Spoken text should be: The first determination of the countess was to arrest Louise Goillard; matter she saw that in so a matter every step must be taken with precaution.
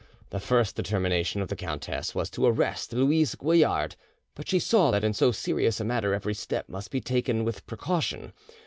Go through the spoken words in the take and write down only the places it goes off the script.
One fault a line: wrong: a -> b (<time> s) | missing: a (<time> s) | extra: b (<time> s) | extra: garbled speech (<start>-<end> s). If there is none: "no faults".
wrong: matter -> but (4.3 s)
extra: serious (5.3 s)